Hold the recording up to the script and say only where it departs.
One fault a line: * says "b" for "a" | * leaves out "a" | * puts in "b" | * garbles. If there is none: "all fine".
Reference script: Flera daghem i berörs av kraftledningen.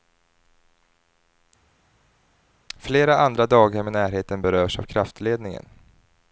* puts in "andra"
* puts in "närheten"